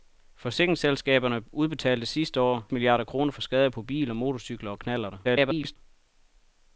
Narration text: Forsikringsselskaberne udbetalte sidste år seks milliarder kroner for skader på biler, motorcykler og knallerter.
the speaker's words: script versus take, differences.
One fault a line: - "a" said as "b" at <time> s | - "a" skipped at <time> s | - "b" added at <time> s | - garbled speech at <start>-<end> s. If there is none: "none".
- "seks" skipped at 2.7 s
- garbled speech at 5.2-5.8 s